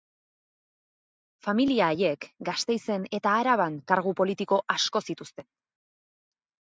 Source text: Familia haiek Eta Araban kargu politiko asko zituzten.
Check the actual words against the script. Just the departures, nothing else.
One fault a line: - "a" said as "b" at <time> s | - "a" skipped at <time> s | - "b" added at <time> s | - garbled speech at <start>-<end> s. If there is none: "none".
- "Gasteizen" added at 2.5 s